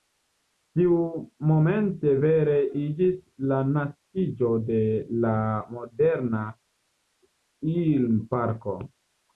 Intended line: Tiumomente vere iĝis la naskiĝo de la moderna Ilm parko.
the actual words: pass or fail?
pass